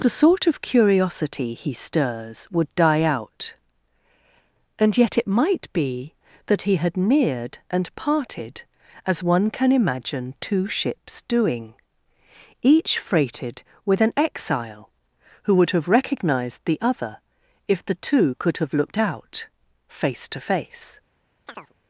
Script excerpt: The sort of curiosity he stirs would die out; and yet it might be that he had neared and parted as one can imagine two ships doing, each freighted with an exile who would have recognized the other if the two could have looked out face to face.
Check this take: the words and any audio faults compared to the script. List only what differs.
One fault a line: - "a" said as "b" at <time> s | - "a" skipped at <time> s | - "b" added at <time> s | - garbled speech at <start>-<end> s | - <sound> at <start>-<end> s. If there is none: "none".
- chirp at 21.5-21.7 s